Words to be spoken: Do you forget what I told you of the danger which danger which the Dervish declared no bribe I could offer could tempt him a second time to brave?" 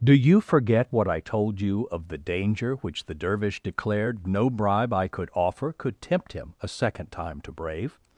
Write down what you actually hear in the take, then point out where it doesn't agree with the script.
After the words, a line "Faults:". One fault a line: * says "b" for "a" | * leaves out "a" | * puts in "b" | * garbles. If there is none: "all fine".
Do you forget what I told you of the danger which the Dervish declared no bribe I could offer could tempt him a second time to brave?"
Faults:
* leaves out "danger which"